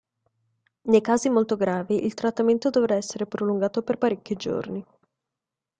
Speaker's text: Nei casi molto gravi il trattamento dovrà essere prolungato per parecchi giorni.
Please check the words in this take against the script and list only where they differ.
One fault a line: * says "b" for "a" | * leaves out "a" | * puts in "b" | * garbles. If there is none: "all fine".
all fine